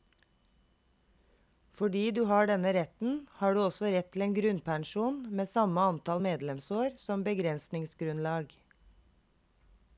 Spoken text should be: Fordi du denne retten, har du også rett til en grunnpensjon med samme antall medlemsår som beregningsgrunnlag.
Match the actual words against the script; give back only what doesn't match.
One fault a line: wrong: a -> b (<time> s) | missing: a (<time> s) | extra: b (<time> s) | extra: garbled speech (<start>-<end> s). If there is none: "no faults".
extra: har (2.3 s)